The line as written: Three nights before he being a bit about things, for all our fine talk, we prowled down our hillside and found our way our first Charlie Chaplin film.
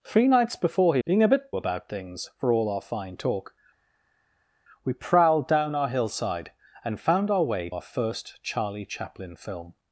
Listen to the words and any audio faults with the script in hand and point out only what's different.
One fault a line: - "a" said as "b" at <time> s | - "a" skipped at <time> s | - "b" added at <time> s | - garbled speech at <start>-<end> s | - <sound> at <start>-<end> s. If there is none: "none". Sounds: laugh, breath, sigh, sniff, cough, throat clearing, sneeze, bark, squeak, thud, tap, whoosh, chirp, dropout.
none